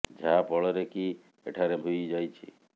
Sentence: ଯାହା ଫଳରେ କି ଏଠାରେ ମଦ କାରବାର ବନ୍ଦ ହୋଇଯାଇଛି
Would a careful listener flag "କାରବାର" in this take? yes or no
yes